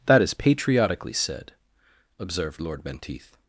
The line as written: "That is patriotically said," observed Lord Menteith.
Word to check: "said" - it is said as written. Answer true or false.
true